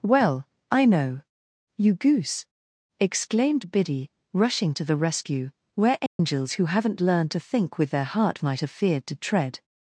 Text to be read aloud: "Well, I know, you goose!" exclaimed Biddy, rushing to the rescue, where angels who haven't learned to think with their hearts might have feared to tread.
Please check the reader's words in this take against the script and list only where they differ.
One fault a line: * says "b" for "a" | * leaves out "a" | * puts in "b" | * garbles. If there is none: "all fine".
* says "heart" for "hearts"